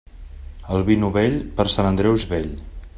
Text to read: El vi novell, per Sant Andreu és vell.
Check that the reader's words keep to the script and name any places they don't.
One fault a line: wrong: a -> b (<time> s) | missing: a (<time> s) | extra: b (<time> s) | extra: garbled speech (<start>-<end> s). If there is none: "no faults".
no faults